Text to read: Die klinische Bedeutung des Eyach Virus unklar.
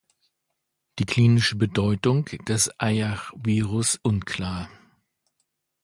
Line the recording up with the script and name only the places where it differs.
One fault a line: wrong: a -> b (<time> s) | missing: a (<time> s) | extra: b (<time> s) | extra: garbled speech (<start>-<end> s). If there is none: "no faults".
no faults